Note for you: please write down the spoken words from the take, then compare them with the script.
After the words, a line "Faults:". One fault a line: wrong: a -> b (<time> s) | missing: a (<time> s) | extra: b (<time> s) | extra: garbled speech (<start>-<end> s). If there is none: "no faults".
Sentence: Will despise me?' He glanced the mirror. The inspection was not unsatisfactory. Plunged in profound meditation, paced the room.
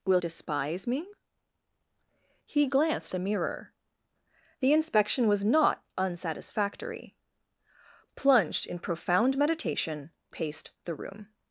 Will despise me?' He glanced the mirror. The inspection was not unsatisfactory. Plunged in profound meditation, paced the room.
Faults:
no faults